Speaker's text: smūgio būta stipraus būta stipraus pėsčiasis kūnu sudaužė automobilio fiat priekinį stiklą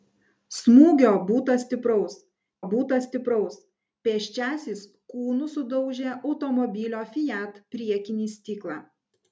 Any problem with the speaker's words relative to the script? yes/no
no